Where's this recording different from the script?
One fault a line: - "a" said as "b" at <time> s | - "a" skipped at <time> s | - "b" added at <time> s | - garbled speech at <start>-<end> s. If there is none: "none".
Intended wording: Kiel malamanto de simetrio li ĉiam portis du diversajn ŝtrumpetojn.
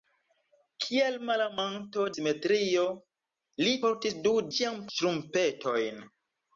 - "de" skipped at 2.1 s
- "ĉiam" skipped at 3.8 s
- "diversajn" said as "ĉiam" at 4.6 s